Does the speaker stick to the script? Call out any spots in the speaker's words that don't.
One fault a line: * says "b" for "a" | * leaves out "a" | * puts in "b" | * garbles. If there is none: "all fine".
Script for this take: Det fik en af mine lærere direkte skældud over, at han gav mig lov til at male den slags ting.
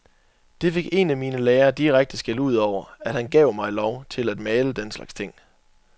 all fine